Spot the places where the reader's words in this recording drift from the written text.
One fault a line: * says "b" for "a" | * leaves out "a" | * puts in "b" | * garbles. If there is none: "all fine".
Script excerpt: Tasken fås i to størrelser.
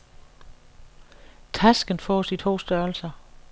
all fine